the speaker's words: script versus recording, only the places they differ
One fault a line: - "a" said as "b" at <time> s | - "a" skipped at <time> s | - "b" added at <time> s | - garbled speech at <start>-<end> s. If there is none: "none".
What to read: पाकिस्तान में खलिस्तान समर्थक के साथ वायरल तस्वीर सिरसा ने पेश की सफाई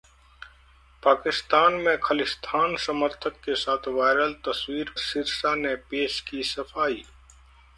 none